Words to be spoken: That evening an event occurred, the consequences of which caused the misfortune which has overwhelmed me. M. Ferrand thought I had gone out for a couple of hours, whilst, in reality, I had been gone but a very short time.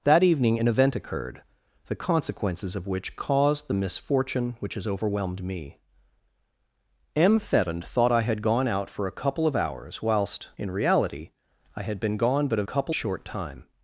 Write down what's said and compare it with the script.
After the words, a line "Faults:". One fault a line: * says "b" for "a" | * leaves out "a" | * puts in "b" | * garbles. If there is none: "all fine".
That evening an event occurred, the consequences of which caused the misfortune which has overwhelmed me. M. Ferrand thought I had gone out for a couple of hours, whilst, in reality, I had been gone but a couple short time.
Faults:
* says "couple" for "very"